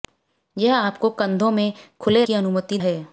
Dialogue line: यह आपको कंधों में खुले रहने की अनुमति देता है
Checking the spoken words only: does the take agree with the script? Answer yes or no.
no